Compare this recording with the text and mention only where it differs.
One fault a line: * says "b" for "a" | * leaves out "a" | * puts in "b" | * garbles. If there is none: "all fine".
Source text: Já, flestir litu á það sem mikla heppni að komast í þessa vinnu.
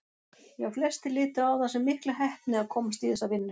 all fine